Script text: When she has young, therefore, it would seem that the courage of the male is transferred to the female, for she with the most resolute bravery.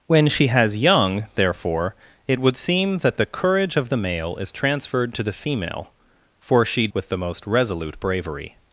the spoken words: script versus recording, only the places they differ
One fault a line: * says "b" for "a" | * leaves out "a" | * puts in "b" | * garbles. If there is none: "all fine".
all fine